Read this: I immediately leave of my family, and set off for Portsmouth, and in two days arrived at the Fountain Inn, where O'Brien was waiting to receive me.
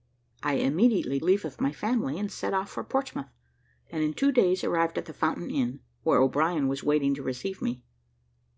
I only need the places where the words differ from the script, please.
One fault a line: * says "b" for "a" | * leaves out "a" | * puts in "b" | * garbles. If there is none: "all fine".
all fine